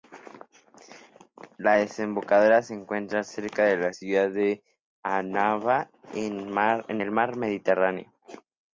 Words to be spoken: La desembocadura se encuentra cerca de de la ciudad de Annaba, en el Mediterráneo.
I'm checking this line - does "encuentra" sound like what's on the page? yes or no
yes